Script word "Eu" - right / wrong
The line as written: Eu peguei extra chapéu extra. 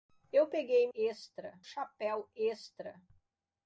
right